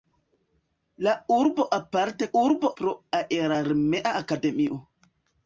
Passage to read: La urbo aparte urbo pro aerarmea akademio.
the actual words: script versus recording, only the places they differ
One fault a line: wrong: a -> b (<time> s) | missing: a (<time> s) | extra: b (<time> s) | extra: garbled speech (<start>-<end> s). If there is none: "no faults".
no faults